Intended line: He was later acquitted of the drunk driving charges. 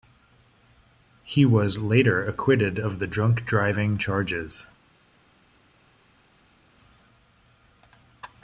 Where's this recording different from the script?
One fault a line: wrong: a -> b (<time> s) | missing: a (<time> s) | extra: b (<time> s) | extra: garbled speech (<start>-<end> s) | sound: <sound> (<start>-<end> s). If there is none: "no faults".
no faults